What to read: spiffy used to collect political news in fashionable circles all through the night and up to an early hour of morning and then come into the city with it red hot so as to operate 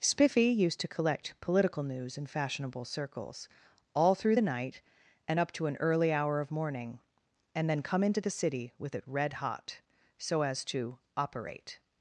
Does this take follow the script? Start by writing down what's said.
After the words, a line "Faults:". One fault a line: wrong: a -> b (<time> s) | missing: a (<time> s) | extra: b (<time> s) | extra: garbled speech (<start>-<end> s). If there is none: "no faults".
spiffy used to collect political news in fashionable circles all through the night and up to an early hour of morning and then come into the city with it red hot so as to operate
Faults:
no faults